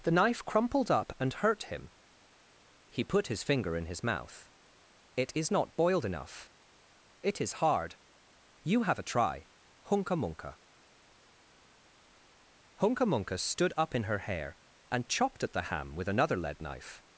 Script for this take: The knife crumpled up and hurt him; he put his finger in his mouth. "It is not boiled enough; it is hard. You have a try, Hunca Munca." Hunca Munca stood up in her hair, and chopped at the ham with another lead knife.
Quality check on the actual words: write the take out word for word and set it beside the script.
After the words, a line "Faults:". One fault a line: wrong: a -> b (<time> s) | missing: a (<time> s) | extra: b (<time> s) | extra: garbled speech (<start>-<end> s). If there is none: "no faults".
The knife crumpled up and hurt him; he put his finger in his mouth. "It is not boiled enough; it is hard. You have a try, Hunca Munca." Hunca Munca stood up in her hair, and chopped at the ham with another lead knife.
Faults:
no faults